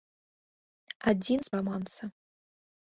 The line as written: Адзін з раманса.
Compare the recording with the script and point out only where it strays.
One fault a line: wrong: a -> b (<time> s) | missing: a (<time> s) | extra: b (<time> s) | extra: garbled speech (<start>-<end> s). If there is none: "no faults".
no faults